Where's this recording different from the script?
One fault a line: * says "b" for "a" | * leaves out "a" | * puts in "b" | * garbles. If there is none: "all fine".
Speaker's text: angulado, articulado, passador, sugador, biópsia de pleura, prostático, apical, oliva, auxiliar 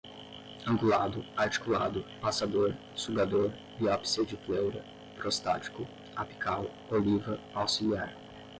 all fine